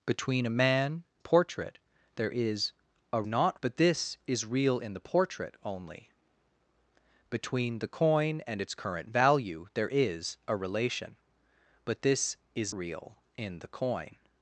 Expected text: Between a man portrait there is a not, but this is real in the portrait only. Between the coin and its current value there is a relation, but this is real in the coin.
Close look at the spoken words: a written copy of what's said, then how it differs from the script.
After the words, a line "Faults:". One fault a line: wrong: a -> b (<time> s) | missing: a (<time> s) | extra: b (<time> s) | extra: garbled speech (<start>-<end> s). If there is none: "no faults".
Between a man portrait there is a not, but this is real in the portrait only. Between the coin and its current value there is a relation, but this is real in the coin.
Faults:
no faults